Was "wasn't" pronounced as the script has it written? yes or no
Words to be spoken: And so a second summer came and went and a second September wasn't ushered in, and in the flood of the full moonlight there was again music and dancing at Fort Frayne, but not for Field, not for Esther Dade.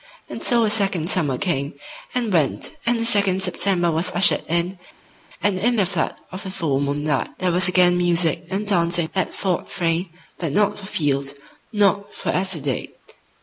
no